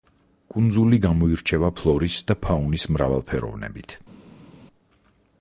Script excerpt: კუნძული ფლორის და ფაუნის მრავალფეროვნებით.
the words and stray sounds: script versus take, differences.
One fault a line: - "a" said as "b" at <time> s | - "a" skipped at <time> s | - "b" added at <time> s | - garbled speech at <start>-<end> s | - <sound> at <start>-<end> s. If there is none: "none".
- "გამოირჩევა" added at 1.0 s